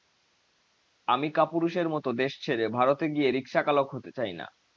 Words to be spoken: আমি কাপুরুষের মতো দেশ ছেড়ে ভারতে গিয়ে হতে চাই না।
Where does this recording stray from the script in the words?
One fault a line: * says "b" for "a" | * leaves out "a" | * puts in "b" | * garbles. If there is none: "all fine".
* puts in "রিকশাচালক"